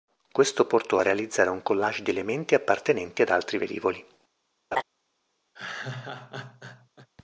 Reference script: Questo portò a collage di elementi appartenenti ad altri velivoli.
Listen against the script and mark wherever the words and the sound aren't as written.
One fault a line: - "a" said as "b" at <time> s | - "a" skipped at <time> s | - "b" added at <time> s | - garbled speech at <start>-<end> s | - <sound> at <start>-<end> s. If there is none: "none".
- "realizzare un" added at 1.0 s
- laugh at 4.7-4.8 s
- laugh at 5.5-7.1 s